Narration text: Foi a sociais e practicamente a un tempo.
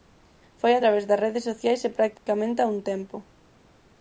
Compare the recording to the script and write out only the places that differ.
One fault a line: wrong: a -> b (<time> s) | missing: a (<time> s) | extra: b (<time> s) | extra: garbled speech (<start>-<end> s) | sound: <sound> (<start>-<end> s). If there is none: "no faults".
extra: través das redes (0.8 s)
sound: dropout (2.2-2.3 s)